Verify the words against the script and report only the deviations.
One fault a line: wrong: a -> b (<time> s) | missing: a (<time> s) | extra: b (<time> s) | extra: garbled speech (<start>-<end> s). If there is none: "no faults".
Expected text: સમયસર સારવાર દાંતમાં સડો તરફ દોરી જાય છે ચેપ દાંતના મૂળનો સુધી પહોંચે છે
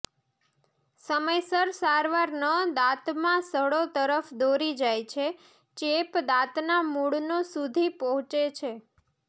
extra: ન (2.4 s)